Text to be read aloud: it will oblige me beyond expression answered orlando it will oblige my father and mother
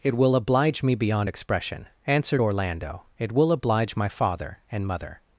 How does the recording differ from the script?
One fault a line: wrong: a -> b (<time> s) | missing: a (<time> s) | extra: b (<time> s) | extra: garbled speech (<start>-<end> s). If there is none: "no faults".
no faults